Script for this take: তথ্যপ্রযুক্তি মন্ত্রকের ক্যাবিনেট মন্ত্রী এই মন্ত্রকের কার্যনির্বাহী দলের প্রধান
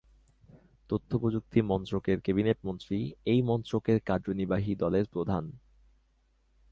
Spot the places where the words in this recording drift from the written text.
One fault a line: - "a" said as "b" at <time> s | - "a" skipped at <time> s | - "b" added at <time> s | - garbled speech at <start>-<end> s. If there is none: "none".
none